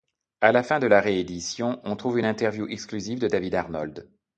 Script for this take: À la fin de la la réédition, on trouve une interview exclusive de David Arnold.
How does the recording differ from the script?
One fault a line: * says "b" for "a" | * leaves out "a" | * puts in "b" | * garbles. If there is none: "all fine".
* leaves out "la"